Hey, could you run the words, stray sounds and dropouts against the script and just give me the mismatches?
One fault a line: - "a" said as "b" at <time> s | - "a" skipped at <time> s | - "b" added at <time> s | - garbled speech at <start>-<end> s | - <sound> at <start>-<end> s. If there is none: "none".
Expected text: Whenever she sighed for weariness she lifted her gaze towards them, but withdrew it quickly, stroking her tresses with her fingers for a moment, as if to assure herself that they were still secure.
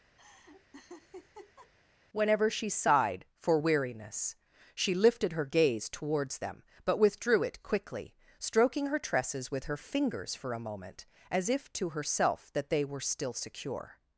- laugh at 0.2-1.7 s
- "assure" skipped at 11.9 s